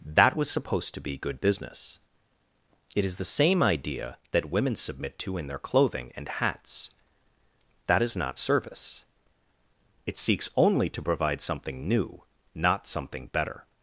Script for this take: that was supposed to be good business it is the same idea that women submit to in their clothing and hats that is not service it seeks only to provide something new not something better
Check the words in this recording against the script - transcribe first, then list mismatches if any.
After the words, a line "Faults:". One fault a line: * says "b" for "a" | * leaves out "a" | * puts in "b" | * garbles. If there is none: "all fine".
that was supposed to be good business it is the same idea that women submit to in their clothing and hats that is not service it seeks only to provide something new not something better
Faults:
all fine